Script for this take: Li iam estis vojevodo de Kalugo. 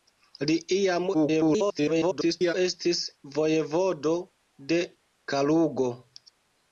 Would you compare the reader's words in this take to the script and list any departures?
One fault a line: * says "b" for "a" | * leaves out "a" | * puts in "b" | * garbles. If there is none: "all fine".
* garbles